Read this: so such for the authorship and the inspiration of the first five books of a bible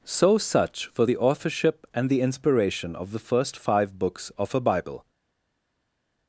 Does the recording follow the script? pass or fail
pass